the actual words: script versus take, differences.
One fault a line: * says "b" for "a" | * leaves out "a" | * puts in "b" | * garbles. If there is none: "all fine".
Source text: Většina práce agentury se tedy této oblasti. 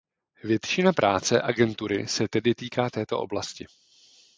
* puts in "týká"